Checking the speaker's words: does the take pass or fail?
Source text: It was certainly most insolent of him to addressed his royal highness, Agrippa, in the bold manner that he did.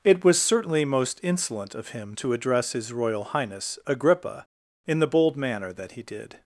fail